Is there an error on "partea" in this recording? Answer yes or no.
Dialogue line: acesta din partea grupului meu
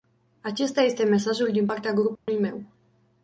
no